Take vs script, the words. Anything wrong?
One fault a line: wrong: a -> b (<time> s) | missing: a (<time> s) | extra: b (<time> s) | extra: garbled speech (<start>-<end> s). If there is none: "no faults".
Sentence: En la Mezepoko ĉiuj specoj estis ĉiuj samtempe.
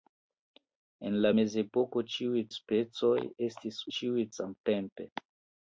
no faults